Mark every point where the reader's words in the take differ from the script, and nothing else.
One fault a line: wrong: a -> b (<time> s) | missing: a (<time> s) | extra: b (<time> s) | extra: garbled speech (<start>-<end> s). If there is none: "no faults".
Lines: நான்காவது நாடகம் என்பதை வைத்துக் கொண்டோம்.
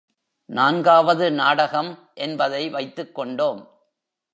no faults